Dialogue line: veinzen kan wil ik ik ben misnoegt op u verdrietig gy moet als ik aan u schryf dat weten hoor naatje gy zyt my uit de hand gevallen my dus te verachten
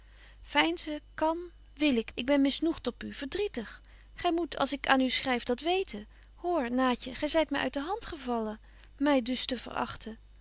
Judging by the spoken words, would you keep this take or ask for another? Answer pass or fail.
pass